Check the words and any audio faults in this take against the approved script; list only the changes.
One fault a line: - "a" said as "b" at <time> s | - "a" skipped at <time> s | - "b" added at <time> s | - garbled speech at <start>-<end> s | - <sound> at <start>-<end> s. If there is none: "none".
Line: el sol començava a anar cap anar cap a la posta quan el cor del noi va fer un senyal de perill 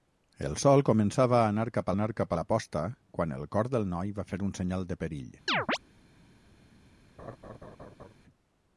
- chirp at 5.5-5.8 s
- laugh at 7.2-8.1 s